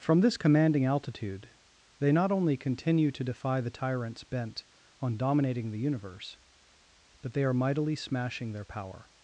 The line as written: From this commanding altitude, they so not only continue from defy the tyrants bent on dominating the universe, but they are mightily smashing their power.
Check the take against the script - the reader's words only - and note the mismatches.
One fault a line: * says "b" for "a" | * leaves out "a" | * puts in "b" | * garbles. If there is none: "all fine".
* leaves out "so"
* says "to" for "from"